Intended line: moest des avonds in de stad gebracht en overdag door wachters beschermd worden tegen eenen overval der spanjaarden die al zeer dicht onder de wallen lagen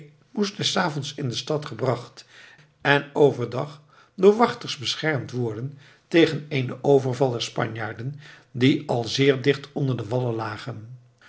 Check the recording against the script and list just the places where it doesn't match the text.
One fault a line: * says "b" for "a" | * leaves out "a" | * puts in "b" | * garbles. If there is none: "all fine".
all fine